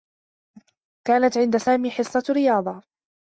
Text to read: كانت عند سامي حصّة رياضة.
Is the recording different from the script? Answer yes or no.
no